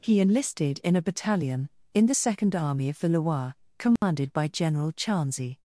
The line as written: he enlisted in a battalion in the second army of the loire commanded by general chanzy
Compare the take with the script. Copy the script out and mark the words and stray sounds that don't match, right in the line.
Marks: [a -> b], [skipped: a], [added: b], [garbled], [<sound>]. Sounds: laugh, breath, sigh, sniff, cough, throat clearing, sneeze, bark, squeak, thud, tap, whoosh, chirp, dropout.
he enlisted in a battalion in the second army of the loire commanded [dropout] by general chanzy